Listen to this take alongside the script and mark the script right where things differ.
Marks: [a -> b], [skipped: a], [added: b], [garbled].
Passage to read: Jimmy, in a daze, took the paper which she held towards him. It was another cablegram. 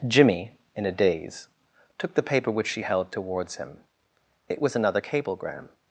Jimmy, in a daze, took the paper which she held towards him. It was another cablegram.